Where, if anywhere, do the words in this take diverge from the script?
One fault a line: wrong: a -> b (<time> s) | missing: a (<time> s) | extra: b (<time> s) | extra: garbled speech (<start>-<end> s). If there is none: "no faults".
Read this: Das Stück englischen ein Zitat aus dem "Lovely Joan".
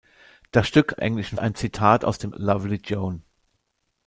no faults